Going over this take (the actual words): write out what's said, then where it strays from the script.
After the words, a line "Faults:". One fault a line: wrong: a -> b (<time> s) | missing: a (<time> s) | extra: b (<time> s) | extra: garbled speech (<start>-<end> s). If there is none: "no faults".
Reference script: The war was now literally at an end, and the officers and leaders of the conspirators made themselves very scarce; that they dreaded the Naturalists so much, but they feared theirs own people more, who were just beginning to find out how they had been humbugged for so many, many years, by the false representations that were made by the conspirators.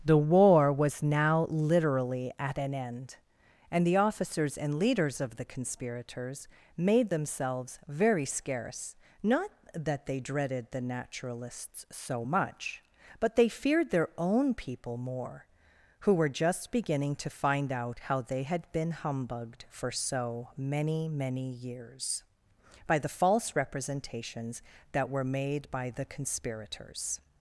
The war was now literally at an end, and the officers and leaders of the conspirators made themselves very scarce; not that they dreaded the Naturalists so much, but they feared their own people more, who were just beginning to find out how they had been humbugged for so many, many years, by the false representations that were made by the conspirators.
Faults:
extra: not (9.2 s)
wrong: theirs -> their (13.9 s)